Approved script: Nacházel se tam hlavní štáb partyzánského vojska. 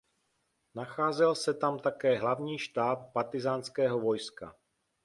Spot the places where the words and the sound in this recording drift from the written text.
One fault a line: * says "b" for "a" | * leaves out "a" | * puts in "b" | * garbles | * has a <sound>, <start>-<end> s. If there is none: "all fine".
* puts in "také"